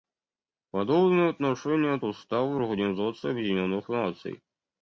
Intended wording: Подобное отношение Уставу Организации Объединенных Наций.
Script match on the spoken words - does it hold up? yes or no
yes